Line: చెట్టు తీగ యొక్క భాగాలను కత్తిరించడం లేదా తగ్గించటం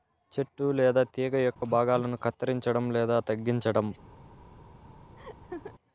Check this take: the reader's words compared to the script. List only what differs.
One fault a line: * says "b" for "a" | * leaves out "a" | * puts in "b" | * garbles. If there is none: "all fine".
* puts in "లేదా"